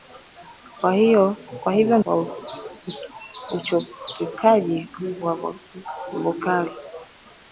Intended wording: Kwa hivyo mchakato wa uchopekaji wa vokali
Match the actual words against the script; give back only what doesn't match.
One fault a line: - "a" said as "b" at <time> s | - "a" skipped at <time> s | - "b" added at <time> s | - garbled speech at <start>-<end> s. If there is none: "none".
- "mchakato" skipped at 2.0 s